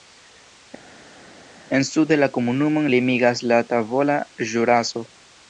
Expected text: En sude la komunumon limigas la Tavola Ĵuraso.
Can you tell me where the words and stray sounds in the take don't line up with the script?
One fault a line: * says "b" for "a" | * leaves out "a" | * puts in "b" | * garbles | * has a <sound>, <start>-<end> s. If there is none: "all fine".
all fine